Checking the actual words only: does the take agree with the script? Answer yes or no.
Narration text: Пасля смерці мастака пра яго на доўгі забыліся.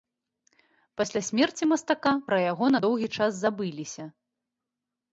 no